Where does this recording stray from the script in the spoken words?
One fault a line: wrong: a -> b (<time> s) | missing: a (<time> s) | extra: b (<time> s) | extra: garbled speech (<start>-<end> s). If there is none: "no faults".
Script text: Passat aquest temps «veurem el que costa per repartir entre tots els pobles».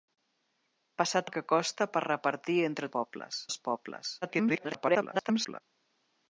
missing: aquest temps veurem (1.3 s)
wrong: tots -> pobles (3.0 s)
extra: garbled speech (4.2-5.6 s)